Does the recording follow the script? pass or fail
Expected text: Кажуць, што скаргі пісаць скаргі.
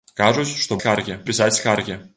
pass